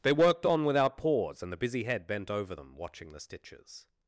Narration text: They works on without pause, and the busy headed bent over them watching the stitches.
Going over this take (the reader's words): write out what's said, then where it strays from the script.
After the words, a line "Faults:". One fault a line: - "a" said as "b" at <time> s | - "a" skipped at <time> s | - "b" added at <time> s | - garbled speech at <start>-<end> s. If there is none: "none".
They worked on without pause, and the busy head bent over them watching the stitches.
Faults:
- "works" said as "worked" at 0.1 s
- "headed" said as "head" at 1.8 s